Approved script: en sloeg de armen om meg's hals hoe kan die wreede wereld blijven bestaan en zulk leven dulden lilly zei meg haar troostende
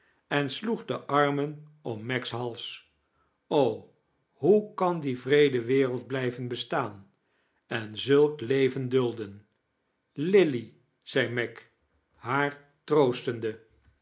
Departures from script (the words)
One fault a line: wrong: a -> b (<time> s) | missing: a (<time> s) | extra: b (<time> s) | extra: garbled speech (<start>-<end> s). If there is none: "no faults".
no faults